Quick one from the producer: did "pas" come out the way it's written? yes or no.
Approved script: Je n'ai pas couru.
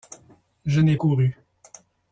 no